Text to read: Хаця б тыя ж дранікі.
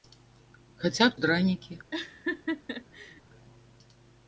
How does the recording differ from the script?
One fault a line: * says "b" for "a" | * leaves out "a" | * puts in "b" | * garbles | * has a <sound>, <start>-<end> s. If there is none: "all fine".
* leaves out "тыя"
* has a laugh, 1.9-3.2 s